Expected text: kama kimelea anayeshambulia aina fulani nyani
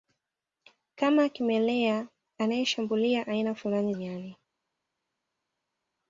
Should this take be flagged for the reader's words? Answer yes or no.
no